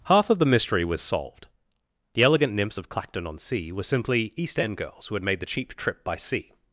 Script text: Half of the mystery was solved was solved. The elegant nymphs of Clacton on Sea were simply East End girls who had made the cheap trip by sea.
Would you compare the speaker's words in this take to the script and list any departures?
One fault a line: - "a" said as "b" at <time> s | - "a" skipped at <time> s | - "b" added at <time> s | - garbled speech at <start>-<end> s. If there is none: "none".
- "was solved" skipped at 1.5 s